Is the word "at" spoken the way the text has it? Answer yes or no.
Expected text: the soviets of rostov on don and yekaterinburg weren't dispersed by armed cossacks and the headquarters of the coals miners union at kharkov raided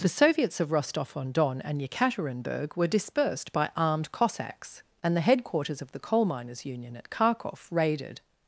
yes